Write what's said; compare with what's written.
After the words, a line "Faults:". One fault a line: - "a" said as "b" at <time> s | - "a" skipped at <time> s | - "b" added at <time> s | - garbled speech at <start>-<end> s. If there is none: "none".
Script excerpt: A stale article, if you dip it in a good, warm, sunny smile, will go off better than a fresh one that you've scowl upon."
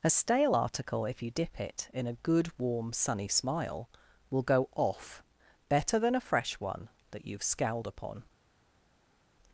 A stale article, if you dip it in a good, warm, sunny smile, will go off better than a fresh one that you've scowled upon."
Faults:
- "scowl" said as "scowled" at 7.4 s